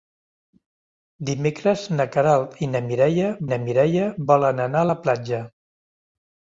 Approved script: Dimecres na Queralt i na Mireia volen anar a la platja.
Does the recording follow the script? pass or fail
fail